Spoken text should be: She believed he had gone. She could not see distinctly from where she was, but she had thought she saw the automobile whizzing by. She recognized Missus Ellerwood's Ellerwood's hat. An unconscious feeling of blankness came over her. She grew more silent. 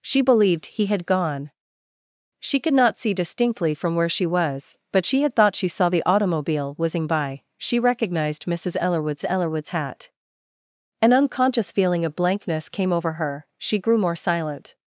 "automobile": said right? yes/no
yes